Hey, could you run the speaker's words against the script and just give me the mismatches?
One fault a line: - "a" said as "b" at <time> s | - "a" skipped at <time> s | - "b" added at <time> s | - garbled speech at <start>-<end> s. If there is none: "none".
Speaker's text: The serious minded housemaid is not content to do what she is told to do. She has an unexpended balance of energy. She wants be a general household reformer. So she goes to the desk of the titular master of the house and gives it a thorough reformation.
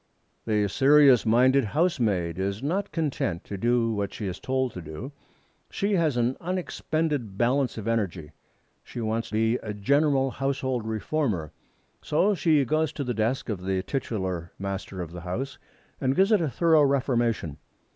none